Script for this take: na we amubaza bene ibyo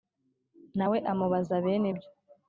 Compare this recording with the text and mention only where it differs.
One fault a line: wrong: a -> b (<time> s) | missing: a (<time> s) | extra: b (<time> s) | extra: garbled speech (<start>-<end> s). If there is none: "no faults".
no faults